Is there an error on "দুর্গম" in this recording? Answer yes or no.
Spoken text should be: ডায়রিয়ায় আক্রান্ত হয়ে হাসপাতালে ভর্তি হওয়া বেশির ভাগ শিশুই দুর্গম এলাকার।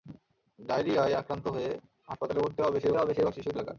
yes